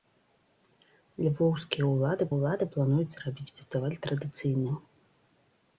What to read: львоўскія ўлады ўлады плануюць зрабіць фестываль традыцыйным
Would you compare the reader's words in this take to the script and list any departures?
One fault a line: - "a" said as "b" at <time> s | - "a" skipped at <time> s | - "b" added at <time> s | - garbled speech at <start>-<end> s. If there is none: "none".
none